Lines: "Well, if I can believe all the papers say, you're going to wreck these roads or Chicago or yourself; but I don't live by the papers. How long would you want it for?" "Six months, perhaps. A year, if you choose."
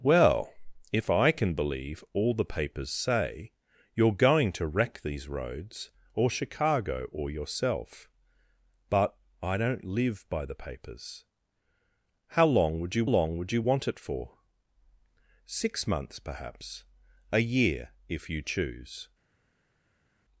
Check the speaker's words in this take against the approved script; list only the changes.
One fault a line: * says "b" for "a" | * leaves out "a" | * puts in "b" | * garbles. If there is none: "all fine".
* puts in "long would you"